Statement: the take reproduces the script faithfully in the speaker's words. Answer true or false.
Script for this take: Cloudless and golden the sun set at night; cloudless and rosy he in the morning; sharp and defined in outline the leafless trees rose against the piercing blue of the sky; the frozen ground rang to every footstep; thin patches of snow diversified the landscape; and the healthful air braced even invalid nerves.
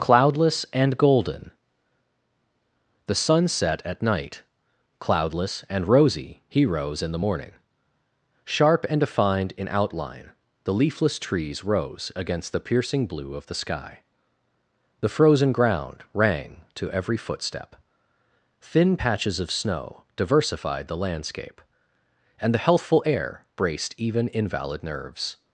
false